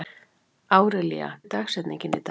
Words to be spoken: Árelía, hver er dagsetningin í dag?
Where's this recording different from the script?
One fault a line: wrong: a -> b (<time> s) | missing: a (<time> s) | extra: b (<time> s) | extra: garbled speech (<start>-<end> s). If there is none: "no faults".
missing: hver (1.4 s)